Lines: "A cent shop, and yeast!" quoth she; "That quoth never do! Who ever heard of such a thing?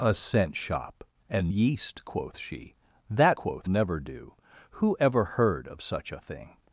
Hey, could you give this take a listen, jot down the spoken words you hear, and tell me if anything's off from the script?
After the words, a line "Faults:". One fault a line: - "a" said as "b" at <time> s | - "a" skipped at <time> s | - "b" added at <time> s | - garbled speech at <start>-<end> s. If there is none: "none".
"A cent shop, and yeast!" quoth she; "That quoth never do! Who ever heard of such a thing?
Faults:
none